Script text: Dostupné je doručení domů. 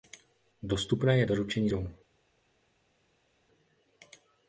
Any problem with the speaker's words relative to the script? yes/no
no